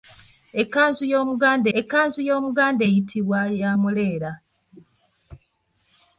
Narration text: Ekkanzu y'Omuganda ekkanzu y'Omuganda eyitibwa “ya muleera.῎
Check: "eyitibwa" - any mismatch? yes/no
no